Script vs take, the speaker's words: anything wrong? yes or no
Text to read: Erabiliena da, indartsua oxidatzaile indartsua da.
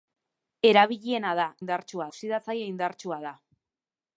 no